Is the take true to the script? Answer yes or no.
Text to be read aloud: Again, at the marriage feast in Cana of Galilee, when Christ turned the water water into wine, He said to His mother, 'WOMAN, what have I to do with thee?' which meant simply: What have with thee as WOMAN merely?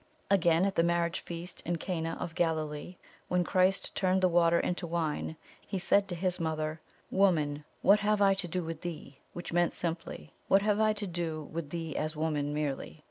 no